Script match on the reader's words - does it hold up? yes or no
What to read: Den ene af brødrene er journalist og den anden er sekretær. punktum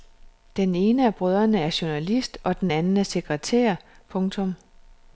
yes